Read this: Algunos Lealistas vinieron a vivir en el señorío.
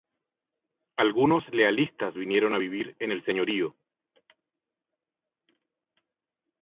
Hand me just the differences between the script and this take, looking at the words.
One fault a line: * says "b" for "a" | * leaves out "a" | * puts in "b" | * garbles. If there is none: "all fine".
all fine